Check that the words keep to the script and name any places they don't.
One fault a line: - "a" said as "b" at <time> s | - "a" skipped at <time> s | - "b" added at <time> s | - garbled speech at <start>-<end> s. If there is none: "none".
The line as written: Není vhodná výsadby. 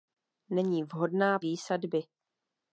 none